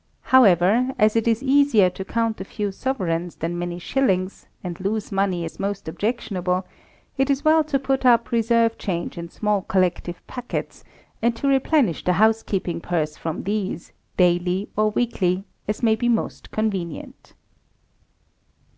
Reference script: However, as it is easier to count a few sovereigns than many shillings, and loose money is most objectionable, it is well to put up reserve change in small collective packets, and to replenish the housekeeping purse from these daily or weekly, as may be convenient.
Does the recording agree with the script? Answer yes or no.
no